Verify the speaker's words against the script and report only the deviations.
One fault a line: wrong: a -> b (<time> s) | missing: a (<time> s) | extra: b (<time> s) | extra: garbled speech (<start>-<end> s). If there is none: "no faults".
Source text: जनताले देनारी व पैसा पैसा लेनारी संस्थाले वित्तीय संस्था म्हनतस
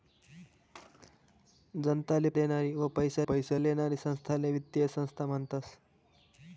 no faults